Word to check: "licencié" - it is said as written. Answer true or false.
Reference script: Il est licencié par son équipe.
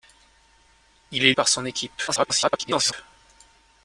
false